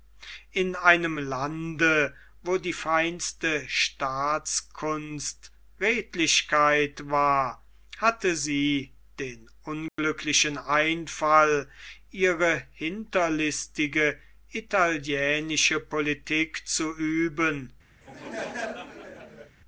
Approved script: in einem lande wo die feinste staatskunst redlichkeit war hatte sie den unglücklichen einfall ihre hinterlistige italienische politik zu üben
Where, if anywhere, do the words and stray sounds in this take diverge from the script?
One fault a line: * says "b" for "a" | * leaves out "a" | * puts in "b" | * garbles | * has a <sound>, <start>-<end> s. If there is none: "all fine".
* has a dropout, 9.9-10.0 s
* has a laugh, 18.0-19.6 s